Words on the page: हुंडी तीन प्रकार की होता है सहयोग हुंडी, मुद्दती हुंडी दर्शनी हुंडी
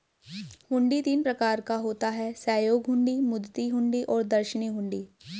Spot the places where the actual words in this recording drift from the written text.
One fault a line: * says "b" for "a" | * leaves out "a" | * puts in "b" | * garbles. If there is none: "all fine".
* says "का" for "की"
* puts in "और"